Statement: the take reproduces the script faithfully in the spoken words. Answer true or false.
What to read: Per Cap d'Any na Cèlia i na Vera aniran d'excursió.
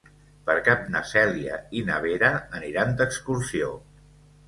false